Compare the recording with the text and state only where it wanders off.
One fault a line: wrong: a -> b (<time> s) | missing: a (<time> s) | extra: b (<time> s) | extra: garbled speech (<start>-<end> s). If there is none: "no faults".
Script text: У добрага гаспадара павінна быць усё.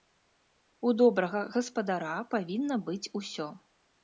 no faults